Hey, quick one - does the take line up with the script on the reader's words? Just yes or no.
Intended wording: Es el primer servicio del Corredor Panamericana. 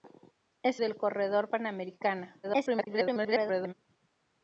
no